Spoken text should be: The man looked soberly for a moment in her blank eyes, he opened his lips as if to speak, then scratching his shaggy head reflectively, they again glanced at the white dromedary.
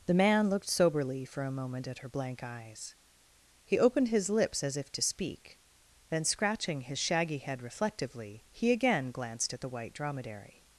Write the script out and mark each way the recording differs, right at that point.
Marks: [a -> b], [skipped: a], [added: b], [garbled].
The man looked soberly for a moment [in -> at] her blank eyes, he opened his lips as if to speak, then scratching his shaggy head reflectively, [they -> he] again glanced at the white dromedary.